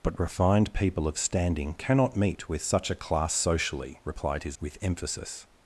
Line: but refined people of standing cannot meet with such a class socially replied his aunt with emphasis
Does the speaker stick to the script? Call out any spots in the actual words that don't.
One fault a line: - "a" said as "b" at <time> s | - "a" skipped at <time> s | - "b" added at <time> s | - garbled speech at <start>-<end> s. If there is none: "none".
- "aunt" skipped at 4.6 s